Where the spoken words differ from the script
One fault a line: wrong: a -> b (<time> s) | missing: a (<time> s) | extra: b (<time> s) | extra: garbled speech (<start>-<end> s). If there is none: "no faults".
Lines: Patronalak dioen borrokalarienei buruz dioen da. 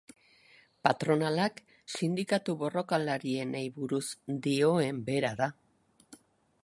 wrong: dioen -> sindikatu (1.9 s)
extra: bera (5.1 s)